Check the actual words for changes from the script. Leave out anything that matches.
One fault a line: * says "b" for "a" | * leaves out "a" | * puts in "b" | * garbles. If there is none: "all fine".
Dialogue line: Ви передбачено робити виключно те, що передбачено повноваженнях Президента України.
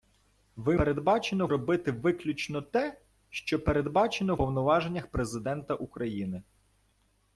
all fine